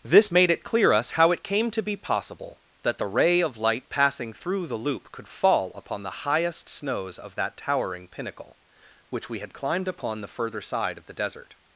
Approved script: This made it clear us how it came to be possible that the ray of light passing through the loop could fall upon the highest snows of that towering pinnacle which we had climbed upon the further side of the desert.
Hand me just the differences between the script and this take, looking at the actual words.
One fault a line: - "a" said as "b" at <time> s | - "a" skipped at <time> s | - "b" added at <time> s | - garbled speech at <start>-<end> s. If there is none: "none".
none